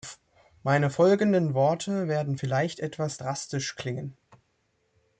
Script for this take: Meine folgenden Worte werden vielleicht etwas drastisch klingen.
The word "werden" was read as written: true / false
true